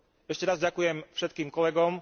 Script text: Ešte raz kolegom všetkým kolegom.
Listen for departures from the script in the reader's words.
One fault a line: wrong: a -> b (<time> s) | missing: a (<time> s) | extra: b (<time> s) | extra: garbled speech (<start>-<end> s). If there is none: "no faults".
wrong: kolegom -> ďakujem (0.6 s)